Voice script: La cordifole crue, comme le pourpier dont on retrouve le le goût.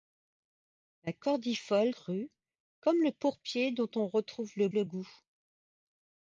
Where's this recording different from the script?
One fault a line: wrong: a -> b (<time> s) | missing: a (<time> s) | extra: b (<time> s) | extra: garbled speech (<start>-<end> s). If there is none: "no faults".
no faults